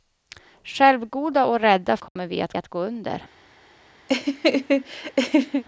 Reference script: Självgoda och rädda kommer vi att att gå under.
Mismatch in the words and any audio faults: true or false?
true